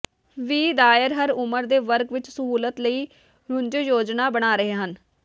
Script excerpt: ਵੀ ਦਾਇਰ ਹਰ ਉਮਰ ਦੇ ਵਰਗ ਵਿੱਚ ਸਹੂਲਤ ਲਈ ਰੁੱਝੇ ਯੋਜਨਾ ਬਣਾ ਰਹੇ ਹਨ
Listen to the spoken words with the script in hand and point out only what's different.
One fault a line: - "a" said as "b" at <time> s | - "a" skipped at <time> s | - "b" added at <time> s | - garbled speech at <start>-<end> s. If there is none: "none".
none